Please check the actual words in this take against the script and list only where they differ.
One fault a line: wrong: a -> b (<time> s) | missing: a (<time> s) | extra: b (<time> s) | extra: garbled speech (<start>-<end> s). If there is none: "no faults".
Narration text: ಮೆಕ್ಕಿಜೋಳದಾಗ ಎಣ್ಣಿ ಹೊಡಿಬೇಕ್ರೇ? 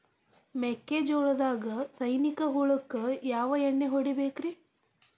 extra: ಸೈನಿಕ ಹುಳಕ್ಕ ಯಾವ (1.9 s)